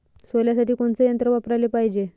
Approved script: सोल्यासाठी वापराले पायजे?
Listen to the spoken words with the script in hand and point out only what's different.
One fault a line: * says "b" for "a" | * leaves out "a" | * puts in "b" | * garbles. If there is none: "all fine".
* puts in "कोनचं यंत्र"